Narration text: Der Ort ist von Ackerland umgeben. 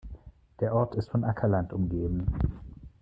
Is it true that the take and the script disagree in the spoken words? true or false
false